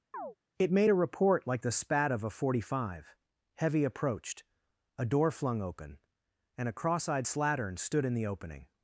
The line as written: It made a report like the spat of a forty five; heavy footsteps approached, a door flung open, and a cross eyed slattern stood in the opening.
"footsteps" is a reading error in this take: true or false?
true